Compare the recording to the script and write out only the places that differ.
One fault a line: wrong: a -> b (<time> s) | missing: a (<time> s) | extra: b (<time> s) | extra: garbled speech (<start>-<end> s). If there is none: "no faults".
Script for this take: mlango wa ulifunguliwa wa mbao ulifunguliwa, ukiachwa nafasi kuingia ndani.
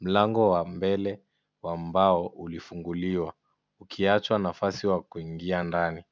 wrong: ulifunguliwa -> mbele (0.7 s)
extra: wa (4.9 s)